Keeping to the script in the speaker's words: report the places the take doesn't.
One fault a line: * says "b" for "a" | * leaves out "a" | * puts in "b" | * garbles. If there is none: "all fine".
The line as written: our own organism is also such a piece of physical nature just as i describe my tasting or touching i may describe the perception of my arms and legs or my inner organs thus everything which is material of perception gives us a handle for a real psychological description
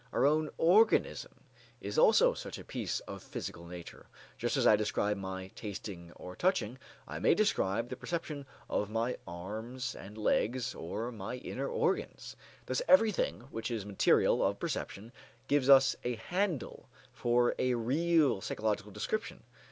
all fine